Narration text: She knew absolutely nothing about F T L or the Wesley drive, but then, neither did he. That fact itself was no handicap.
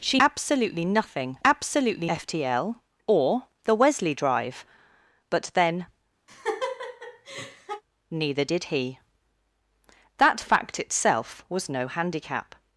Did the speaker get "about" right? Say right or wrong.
wrong